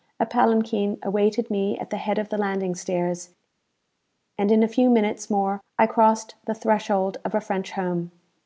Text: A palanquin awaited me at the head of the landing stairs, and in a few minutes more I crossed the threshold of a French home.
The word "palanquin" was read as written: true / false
true